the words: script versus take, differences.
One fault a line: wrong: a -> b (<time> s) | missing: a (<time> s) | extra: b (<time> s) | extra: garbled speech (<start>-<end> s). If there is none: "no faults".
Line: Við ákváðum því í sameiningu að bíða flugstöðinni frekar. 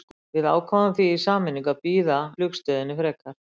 no faults